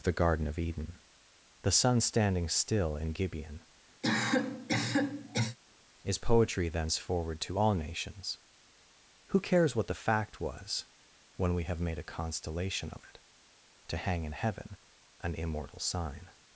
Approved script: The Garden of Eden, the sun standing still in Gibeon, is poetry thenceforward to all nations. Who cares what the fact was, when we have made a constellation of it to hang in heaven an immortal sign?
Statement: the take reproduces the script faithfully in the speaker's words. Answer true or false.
true